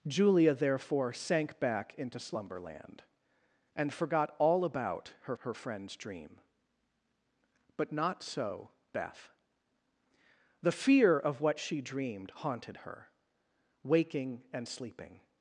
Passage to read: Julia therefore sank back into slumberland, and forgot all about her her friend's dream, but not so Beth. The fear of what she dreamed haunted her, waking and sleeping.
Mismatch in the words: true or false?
false